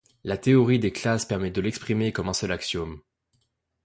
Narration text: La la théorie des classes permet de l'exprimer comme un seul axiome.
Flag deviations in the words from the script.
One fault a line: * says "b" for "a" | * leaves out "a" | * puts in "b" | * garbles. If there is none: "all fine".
* leaves out "la"